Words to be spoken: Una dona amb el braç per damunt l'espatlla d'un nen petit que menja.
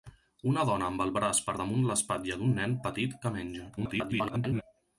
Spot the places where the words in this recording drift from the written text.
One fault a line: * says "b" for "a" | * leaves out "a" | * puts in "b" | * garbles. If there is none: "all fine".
* garbles